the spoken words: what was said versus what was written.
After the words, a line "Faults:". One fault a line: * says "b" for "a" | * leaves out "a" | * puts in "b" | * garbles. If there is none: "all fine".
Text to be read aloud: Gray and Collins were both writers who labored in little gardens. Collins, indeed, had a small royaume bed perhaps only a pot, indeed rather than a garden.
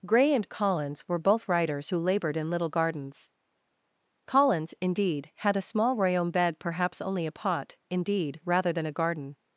Gray and Collins were both writers who labored in little gardens. Collins, indeed, had a small royaume bed perhaps only a pot, indeed rather than a garden.
Faults:
all fine